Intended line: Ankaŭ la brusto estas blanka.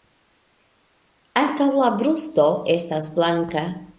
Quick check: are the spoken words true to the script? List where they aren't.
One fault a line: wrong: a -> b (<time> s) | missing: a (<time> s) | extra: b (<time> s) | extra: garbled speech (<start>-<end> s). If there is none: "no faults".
no faults